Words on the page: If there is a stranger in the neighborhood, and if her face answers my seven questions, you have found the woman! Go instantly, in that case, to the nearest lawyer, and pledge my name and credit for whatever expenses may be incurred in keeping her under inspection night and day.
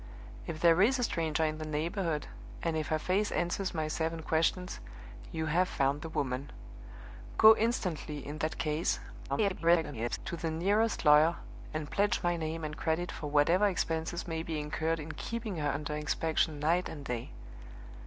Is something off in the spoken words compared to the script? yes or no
yes